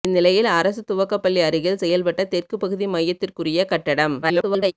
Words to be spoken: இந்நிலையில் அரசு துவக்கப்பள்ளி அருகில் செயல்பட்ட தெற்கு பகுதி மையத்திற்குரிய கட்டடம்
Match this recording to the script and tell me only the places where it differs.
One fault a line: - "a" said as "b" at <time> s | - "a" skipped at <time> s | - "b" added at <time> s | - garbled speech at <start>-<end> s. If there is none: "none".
- garbled speech at 4.2-4.7 s